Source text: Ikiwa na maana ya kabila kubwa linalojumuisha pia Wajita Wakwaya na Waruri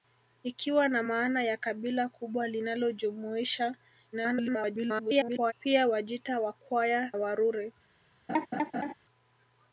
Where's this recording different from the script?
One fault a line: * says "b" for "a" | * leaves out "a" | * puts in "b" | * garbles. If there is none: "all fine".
* garbles
* leaves out "na"